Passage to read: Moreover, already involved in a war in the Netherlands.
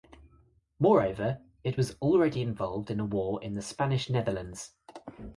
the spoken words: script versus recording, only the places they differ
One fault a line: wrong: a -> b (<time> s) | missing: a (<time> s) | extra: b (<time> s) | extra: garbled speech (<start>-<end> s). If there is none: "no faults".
extra: it was (1.6 s)
extra: Spanish (3.6 s)